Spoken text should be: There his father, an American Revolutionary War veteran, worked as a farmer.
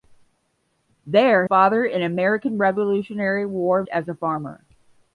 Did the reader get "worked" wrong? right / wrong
wrong